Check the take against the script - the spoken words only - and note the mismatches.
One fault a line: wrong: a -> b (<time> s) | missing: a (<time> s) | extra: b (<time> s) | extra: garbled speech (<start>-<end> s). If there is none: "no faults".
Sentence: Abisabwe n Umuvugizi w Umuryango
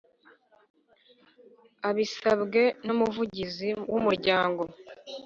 no faults